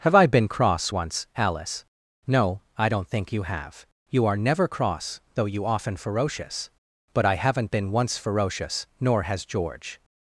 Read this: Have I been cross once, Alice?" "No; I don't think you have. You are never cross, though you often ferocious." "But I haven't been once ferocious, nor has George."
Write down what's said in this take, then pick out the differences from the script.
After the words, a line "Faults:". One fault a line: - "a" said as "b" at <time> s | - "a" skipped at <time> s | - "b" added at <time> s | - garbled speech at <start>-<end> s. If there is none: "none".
Have I been cross once, Alice?" "No; I don't think you have. You are never cross, though you often ferocious." "But I haven't been once ferocious, nor has George."
Faults:
none